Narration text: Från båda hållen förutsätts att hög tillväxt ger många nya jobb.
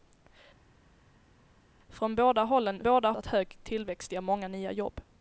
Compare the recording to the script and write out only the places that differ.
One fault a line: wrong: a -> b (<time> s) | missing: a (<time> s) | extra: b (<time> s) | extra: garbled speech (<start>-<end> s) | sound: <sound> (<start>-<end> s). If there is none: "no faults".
wrong: förutsätts -> båda (2.8 s)